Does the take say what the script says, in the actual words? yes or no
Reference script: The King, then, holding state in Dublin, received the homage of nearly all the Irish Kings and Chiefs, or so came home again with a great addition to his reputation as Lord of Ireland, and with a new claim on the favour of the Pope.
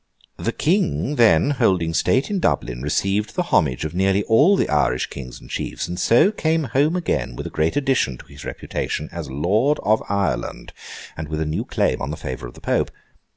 no